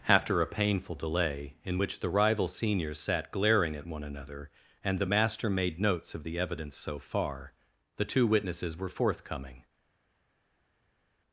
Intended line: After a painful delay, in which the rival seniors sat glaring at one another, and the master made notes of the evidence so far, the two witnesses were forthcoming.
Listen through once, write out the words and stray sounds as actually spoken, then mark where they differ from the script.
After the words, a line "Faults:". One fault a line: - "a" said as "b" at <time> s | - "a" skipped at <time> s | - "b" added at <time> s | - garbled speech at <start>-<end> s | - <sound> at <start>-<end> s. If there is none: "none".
After a painful delay, in which the rival seniors sat glaring at one another, and the master made notes of the evidence so far, the two witnesses were forthcoming.
Faults:
none